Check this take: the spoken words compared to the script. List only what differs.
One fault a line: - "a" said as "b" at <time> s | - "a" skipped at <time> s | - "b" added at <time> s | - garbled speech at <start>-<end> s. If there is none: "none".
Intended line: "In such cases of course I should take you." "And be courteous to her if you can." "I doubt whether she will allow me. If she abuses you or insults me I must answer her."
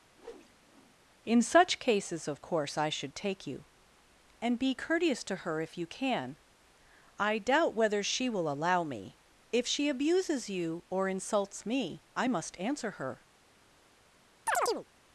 none